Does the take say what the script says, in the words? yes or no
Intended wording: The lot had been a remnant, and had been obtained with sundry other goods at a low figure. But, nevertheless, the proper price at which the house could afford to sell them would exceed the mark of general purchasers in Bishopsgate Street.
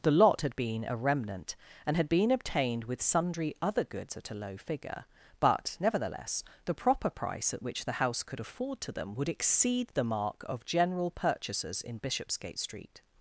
no